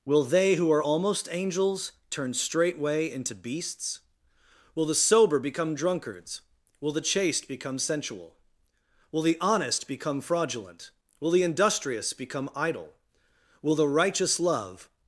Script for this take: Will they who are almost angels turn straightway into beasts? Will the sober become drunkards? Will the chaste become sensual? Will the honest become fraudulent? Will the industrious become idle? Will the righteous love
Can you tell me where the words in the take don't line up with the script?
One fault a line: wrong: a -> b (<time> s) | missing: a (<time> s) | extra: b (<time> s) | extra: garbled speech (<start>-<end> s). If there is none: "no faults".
no faults